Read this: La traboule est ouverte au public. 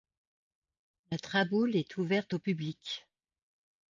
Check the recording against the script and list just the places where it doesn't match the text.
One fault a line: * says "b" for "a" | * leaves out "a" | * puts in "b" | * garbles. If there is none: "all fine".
all fine